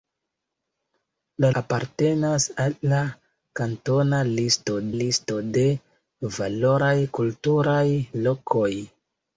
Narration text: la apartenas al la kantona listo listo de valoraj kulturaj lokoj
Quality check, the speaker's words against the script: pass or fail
pass